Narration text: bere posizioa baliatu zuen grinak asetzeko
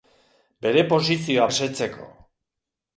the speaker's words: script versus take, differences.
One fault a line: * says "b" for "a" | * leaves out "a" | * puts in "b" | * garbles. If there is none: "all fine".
* leaves out "baliatu zuen grinak"